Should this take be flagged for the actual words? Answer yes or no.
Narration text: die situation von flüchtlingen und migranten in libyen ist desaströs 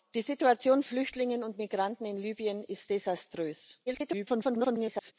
yes